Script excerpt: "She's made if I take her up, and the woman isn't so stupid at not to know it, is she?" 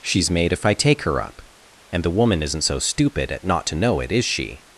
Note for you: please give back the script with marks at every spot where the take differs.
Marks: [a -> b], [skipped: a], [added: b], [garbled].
"She's made if I take her up, and the woman isn't so stupid at not to know it, is she?"